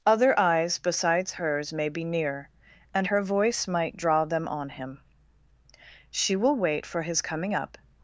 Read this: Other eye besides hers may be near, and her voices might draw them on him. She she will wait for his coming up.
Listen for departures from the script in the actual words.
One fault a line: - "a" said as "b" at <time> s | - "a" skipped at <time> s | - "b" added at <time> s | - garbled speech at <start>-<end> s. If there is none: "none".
- "eye" said as "eyes" at 0.4 s
- "voices" said as "voice" at 3.2 s
- "she" skipped at 6.4 s